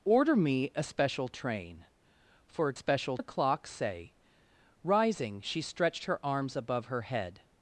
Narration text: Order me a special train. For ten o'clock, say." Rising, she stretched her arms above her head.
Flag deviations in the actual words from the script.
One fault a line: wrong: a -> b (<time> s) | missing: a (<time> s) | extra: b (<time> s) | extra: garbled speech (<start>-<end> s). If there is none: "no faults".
wrong: ten -> special (2.7 s)